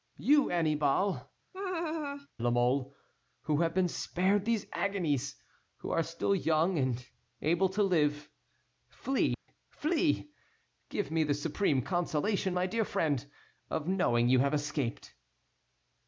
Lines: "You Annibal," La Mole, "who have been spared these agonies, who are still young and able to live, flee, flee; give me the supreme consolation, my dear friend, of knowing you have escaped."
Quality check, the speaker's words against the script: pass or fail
pass